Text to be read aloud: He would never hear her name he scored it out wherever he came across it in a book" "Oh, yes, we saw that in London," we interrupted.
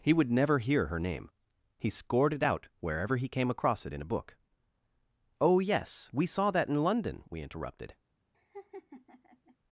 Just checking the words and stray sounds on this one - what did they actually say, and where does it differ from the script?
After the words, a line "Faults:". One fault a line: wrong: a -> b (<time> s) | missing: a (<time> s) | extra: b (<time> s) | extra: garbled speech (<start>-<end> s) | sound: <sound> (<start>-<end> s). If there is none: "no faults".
He would never hear her name he scored it out wherever he came across it in a book" "Oh, yes, we saw that in London," we interrupted.
Faults:
sound: laugh (8.3-9.6 s)